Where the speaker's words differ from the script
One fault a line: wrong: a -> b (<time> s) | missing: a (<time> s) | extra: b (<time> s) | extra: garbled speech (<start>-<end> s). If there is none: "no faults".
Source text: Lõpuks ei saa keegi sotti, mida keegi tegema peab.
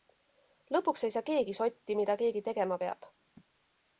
no faults